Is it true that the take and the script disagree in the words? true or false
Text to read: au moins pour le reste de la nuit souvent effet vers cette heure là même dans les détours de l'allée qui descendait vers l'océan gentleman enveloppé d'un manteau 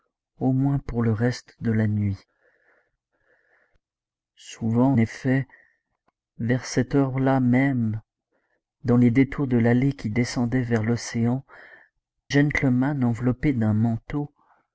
false